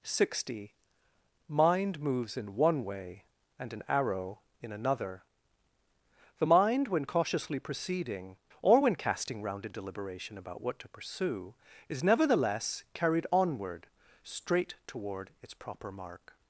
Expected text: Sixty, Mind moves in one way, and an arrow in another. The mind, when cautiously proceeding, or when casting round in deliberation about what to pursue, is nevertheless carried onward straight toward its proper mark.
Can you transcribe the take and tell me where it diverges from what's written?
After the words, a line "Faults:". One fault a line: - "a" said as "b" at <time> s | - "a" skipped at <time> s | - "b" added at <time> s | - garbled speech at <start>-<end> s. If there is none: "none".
Sixty, Mind moves in one way, and an arrow in another. The mind, when cautiously proceeding, or when casting round in deliberation about what to pursue, is nevertheless carried onward straight toward its proper mark.
Faults:
none